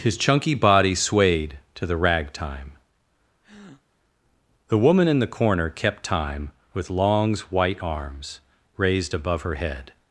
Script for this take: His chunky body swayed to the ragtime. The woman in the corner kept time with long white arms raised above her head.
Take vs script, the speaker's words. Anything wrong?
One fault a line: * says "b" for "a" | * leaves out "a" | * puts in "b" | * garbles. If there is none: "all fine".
* says "longs" for "long"